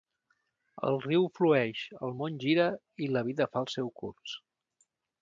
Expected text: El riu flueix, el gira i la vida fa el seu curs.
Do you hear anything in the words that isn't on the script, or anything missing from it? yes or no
yes